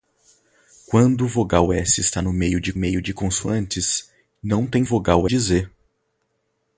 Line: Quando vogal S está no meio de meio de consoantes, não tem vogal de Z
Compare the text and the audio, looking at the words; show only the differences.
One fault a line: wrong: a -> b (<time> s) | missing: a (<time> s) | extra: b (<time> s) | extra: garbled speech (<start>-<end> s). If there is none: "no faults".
no faults